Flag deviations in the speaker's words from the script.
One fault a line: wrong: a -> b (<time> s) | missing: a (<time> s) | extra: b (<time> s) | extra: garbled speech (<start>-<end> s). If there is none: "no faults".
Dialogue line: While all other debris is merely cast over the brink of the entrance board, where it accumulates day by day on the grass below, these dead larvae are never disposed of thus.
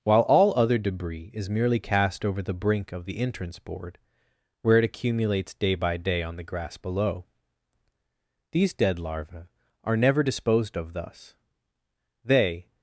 extra: They (12.2 s)